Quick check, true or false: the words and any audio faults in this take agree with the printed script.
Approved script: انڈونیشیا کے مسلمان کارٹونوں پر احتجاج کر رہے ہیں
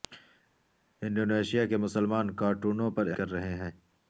false